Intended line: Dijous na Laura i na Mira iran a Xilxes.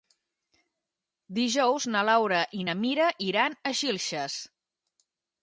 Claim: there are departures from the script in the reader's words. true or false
false